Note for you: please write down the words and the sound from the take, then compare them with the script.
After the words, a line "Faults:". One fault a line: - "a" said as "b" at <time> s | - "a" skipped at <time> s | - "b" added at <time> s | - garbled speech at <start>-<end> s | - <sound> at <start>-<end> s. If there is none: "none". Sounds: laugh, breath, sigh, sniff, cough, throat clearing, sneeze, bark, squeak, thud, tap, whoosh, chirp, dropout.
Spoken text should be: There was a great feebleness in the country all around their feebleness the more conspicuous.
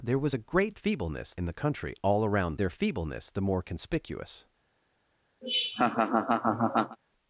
There was a great feebleness in the country all around their feebleness the more conspicuous.
Faults:
- laugh at 5.4-7.0 s